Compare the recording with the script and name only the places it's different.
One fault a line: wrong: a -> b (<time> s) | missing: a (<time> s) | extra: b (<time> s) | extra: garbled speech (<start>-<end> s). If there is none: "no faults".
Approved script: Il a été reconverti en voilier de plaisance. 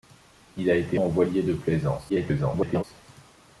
missing: reconverti (1.0 s)
extra: garbled speech (2.1-2.8 s)